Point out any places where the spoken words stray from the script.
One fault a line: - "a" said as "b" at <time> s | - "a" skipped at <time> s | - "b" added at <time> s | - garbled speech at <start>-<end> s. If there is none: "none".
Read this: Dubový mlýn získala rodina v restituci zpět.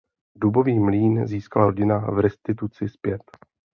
none